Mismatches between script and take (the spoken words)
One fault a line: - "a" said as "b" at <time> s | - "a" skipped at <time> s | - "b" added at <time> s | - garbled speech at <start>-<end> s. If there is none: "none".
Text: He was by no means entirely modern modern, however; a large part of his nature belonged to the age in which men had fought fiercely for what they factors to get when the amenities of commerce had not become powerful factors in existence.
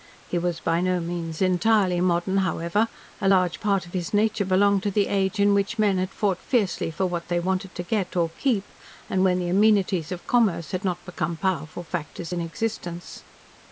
- "modern" skipped at 2.4 s
- "factors" said as "wanted" at 7.4 s
- "or keep and" added at 8.1 s